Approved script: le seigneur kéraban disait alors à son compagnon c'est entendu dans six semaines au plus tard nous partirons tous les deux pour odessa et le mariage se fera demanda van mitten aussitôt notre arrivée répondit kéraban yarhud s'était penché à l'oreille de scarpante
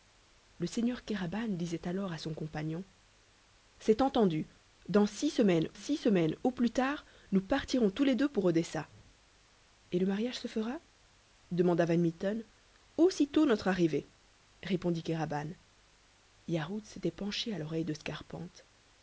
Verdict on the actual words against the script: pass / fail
fail